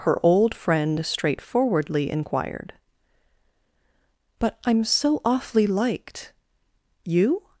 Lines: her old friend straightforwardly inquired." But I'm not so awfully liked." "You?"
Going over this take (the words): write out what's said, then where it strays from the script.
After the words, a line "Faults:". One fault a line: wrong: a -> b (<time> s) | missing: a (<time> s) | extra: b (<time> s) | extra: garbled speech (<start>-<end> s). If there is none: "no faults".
her old friend straightforwardly inquired." But I'm so awfully liked." "You?"
Faults:
missing: not (4.8 s)